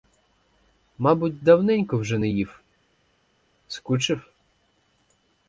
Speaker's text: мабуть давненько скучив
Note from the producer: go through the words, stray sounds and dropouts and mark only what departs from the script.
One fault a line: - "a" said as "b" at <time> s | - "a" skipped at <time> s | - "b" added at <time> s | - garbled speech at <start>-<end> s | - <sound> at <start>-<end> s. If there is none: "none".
- "вже не їв" added at 2.0 s